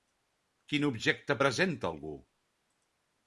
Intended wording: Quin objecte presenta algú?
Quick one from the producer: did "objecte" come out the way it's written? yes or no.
yes